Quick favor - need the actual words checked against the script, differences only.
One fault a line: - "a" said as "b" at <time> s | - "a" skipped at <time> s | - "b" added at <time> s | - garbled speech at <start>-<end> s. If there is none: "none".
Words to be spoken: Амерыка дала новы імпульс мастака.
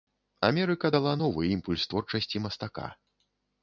- "творчасці" added at 1.9 s